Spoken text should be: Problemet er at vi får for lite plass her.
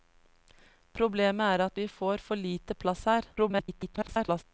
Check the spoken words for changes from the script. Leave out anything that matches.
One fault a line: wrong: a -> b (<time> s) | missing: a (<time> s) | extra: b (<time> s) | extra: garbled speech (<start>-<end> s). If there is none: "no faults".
extra: garbled speech (3.4-4.4 s)